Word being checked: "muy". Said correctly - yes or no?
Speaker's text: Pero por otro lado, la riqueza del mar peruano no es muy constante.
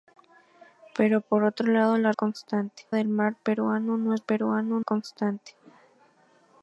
no